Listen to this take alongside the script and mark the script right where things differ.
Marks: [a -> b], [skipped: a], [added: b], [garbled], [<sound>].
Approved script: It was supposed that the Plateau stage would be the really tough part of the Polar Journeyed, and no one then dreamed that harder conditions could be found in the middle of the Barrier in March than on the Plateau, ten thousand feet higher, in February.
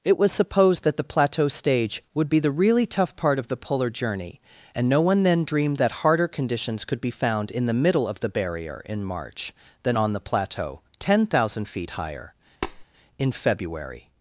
It was supposed that the Plateau stage would be the really tough part of the Polar [Journeyed, -> Journey] and no one then dreamed that harder conditions could be found in the middle of the Barrier in March than on the Plateau, ten thousand feet higher, [tap] in February.